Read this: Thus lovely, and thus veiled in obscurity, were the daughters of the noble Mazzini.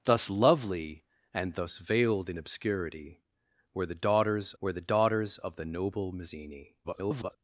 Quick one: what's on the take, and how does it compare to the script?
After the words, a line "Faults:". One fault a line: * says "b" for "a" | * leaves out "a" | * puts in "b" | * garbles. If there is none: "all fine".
Thus lovely, and thus veiled in obscurity, were the daughters were the daughters of the noble Mazzini. [garbled]
Faults:
* puts in "were the daughters"
* garbles